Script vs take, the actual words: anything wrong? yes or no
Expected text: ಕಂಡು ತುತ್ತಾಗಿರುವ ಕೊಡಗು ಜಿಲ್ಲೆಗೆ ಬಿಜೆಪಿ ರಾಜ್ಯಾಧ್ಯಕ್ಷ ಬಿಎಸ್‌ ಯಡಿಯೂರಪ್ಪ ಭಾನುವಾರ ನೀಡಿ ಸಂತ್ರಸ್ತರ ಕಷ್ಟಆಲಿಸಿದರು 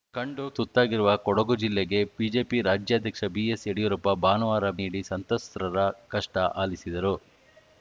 no